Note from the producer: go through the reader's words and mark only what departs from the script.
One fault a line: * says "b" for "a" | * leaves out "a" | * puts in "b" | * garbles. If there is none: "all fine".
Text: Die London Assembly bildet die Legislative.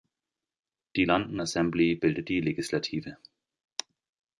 all fine